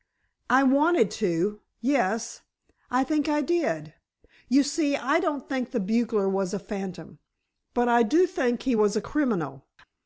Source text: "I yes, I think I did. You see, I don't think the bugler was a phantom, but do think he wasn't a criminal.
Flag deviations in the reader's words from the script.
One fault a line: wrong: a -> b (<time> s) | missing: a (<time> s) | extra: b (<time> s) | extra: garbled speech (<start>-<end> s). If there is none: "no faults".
extra: wanted to (0.6 s)
extra: I (7.9 s)
wrong: wasn't -> was (8.7 s)